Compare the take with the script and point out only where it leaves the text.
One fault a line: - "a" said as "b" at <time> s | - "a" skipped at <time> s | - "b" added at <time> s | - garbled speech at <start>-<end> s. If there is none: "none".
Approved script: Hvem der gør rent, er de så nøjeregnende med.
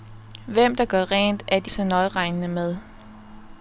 none